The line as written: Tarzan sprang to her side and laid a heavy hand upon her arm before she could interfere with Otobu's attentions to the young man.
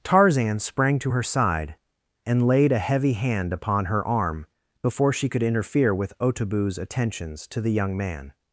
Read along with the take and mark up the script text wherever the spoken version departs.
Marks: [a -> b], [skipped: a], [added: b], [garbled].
Tarzan sprang to her side and laid a heavy hand upon her arm before she could interfere with Otobu's attentions to the young man.